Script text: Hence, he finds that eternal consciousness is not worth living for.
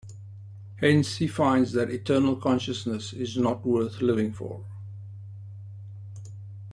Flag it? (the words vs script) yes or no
no